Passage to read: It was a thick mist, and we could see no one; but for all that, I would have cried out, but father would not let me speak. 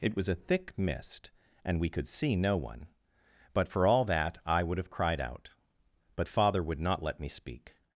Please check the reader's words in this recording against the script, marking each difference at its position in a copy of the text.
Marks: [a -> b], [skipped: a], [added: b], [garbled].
It was a thick mist, and we could see no one; but for all that, I would have cried out, but father would not let me speak.